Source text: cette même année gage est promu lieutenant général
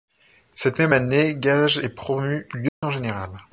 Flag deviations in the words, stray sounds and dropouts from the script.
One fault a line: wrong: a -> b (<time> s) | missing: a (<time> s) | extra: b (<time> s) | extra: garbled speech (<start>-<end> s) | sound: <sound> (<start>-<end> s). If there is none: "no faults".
sound: dropout (2.7-2.8 s)